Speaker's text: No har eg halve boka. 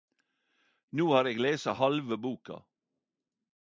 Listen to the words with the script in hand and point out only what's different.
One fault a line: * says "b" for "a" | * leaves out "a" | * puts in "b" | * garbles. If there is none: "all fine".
* puts in "lese"